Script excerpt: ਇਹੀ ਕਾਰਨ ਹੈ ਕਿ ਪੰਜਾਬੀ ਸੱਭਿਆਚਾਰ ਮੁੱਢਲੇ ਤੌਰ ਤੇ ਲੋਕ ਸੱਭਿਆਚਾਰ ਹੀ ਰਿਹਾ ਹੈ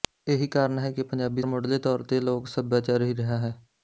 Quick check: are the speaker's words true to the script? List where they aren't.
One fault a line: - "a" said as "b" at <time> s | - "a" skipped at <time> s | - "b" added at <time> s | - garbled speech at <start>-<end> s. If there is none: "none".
- "ਸੱਭਿਆਚਾਰ" skipped at 1.4 s